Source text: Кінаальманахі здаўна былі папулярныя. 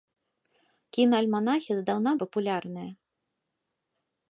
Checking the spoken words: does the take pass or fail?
fail